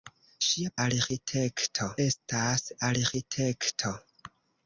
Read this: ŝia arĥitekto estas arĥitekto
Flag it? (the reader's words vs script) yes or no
no